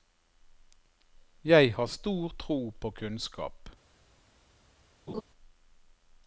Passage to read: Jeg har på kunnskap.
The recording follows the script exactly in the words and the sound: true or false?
false